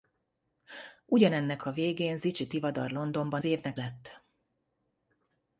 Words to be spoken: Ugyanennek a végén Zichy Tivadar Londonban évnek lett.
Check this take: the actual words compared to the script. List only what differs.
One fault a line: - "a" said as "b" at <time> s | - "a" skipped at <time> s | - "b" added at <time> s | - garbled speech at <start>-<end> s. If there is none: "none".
none